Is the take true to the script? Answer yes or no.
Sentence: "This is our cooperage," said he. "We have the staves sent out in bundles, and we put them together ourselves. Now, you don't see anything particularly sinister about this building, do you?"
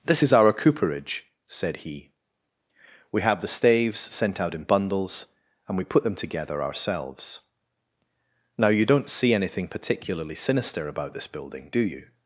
yes